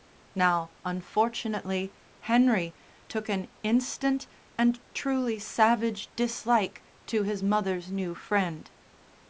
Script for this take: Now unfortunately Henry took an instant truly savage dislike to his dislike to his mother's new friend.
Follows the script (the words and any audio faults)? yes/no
no